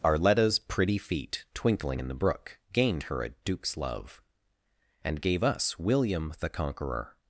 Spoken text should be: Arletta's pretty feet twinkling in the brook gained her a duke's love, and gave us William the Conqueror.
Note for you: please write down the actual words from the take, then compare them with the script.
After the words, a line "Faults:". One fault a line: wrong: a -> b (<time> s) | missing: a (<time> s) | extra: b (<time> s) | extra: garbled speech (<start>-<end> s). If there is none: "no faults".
Arletta's pretty feet twinkling in the brook gained her a duke's love, and gave us William the Conqueror.
Faults:
no faults